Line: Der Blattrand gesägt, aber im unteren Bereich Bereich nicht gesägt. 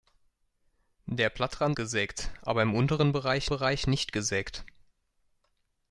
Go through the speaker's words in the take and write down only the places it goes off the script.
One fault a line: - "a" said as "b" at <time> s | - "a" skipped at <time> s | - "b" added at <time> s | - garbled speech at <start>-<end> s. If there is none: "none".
none